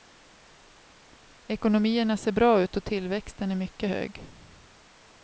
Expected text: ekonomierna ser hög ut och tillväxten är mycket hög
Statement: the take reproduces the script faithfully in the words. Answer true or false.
false